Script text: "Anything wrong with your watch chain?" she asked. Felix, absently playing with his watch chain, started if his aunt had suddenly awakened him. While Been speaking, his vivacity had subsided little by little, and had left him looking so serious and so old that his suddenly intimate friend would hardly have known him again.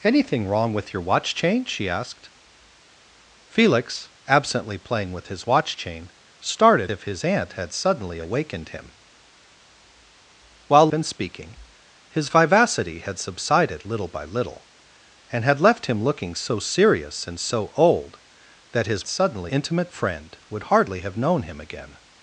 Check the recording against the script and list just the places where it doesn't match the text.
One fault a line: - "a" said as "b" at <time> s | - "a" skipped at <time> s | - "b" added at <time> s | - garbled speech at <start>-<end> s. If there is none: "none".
none